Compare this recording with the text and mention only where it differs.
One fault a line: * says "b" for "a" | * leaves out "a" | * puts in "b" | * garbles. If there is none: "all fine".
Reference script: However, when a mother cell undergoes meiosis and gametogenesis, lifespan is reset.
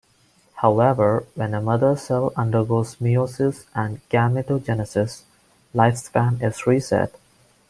all fine